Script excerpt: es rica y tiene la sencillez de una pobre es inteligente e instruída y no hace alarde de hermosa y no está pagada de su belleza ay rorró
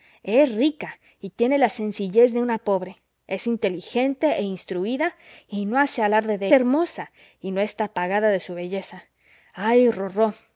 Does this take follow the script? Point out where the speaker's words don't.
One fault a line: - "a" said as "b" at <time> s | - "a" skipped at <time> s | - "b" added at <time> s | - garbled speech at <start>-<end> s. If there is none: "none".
none